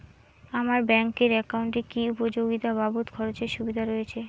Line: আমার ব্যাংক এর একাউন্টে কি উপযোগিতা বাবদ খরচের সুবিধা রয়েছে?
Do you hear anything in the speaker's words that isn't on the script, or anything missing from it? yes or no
no